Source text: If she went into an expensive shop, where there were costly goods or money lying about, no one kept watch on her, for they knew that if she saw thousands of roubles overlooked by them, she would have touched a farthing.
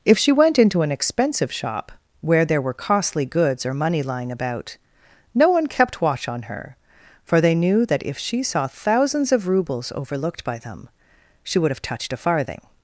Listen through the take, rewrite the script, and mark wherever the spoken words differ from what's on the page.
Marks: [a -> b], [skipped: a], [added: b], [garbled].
If she went into an expensive shop, where there were costly goods or money lying about, no one kept watch on her, for they knew that if she saw thousands of roubles overlooked by them, she would have touched a farthing.